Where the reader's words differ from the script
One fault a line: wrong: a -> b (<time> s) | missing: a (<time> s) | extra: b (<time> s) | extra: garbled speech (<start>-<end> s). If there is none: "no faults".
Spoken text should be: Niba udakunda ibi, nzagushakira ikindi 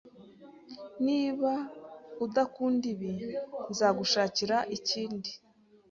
no faults